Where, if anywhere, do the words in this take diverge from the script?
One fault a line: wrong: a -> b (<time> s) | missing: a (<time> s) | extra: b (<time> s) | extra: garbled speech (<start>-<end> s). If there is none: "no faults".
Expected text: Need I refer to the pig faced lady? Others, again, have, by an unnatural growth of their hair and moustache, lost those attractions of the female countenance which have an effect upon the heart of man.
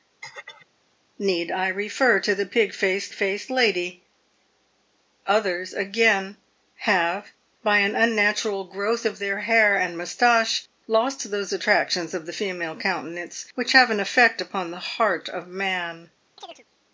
extra: faced (3.1 s)